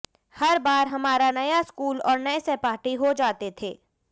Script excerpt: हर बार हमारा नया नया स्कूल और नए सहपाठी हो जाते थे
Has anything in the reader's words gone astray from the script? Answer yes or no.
yes